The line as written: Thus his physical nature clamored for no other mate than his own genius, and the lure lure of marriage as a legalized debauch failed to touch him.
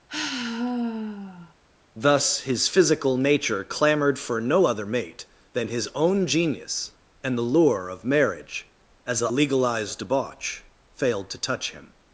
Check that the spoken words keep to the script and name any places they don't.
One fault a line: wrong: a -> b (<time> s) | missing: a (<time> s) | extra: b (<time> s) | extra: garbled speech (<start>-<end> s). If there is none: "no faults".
missing: lure (7.9 s)